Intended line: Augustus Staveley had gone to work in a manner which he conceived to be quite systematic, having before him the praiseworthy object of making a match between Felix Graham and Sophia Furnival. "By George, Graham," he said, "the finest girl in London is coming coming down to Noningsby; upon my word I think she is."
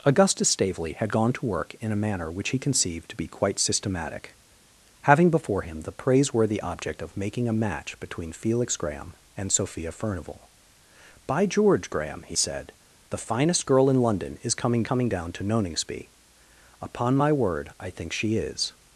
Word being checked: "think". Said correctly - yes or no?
yes